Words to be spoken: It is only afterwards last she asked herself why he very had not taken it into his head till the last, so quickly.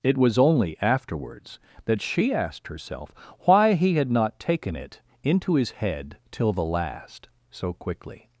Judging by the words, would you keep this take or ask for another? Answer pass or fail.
fail